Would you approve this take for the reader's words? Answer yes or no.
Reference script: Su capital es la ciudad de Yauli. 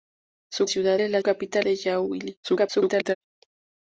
no